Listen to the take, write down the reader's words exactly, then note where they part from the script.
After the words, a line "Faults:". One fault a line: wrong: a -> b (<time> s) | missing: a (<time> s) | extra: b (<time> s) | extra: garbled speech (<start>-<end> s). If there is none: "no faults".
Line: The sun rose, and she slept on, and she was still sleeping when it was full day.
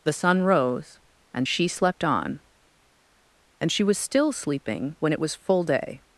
The sun rose, and she slept on, and she was still sleeping when it was full day.
Faults:
no faults